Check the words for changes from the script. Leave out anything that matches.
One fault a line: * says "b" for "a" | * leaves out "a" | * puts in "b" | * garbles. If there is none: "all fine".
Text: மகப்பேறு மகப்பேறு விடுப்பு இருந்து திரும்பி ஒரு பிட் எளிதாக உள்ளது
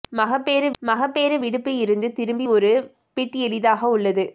all fine